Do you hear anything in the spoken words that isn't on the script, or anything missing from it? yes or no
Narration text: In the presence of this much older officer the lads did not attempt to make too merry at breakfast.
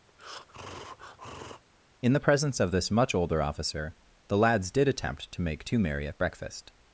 yes